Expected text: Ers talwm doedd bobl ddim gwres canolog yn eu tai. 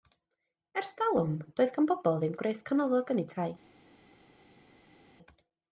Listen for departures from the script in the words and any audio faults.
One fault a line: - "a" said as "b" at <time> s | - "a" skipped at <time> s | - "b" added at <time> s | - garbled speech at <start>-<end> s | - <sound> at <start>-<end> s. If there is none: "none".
- "gan" added at 1.8 s